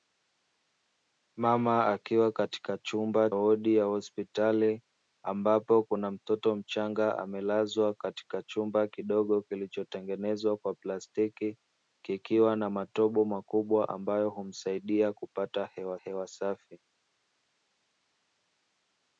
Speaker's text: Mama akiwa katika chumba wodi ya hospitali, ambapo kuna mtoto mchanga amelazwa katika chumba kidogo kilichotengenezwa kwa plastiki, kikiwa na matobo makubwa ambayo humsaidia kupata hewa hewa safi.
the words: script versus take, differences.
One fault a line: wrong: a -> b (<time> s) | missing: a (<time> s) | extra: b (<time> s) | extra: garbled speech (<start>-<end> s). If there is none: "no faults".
no faults